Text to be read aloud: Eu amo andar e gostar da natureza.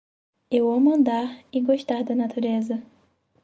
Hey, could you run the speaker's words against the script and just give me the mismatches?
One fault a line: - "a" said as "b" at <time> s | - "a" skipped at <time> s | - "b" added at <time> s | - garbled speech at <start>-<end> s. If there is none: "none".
none